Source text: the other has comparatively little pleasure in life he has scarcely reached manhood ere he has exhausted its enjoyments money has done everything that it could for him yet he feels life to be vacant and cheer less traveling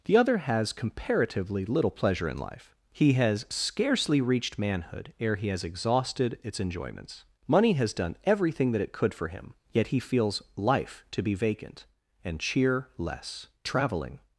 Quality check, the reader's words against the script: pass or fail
pass